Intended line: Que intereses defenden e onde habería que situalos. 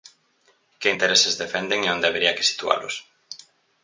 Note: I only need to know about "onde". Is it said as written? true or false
true